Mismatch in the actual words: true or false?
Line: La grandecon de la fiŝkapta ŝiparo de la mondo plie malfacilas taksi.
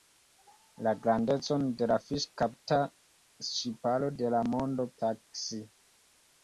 true